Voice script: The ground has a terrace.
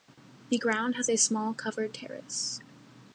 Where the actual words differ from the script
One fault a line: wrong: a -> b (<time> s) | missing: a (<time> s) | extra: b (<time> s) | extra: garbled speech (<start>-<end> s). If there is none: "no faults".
extra: small covered (1.2 s)